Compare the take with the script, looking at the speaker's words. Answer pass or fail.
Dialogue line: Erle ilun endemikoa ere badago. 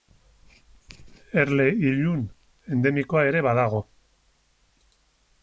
pass